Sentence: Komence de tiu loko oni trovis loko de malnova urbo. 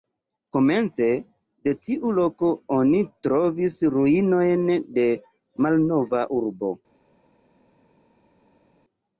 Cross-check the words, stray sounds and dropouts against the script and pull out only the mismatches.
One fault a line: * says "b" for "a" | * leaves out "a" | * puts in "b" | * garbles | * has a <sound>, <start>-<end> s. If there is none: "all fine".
* says "ruinojn" for "loko"